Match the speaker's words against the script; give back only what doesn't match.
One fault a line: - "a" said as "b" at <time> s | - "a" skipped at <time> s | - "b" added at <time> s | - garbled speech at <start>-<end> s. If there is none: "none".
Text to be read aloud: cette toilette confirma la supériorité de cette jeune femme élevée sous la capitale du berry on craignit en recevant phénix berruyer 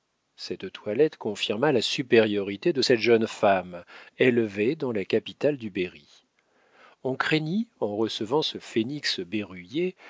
- "sous" said as "dans" at 4.8 s
- "ce" added at 8.4 s